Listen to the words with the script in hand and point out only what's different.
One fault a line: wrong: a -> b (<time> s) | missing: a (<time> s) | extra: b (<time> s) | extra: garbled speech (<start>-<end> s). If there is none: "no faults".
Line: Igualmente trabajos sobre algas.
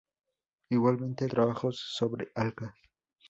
no faults